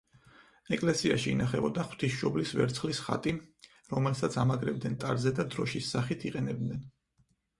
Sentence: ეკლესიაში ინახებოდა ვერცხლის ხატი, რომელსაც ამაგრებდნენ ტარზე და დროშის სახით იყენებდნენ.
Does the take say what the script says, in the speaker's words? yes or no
no